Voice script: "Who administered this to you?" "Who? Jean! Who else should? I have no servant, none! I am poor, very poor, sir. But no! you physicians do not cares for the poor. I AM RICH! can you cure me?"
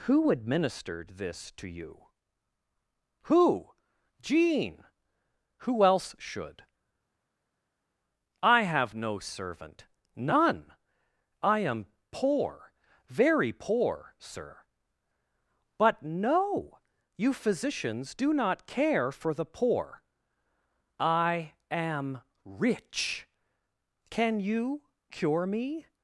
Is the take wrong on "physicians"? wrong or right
right